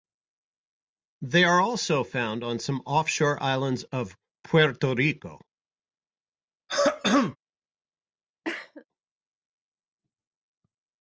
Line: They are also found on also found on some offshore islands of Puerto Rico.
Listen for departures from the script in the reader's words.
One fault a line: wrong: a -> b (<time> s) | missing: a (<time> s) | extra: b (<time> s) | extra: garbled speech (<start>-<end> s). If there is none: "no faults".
missing: also found on (2.6 s)